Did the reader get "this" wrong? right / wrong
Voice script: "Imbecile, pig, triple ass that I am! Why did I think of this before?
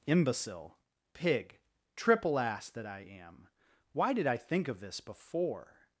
right